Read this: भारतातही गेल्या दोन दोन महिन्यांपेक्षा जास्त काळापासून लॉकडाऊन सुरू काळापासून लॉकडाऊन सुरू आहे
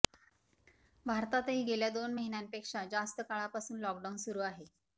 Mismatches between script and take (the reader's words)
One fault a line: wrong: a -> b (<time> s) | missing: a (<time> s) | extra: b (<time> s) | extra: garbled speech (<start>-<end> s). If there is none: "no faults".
missing: दोन (2.1 s)
missing: काळापासून लॉकडाऊन सुरू (4.4 s)